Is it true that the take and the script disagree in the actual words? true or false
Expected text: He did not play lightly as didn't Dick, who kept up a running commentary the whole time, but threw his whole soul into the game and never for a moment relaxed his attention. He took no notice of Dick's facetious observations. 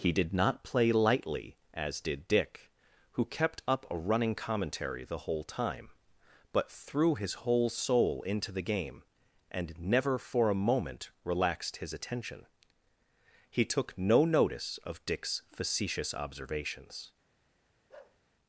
true